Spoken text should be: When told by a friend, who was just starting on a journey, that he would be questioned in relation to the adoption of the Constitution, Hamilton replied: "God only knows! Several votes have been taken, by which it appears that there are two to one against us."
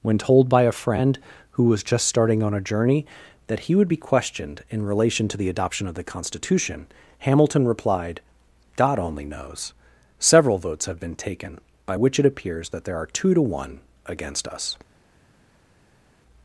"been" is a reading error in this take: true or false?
false